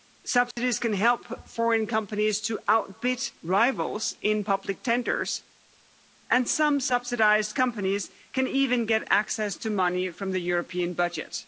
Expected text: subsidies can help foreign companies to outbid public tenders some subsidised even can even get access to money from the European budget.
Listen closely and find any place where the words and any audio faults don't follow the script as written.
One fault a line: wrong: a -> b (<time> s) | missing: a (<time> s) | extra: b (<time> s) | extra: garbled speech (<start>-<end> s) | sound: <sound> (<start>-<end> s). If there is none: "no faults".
sound: dropout (0.5-0.6 s)
extra: rivals in (3.4 s)
extra: and (6.3 s)
wrong: even -> companies (7.6 s)